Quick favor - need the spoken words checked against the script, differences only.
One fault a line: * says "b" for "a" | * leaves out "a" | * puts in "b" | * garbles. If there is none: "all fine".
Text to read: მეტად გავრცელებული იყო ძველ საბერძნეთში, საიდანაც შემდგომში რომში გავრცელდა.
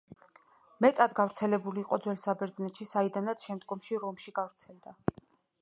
all fine